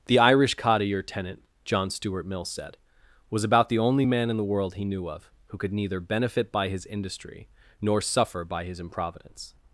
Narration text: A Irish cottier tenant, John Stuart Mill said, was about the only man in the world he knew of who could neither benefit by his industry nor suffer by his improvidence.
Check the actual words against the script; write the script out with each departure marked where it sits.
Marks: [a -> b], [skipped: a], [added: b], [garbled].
[A -> The] Irish cottier tenant, John Stuart Mill said, was about the only man in the world he knew of who could neither benefit by his industry nor suffer by his improvidence.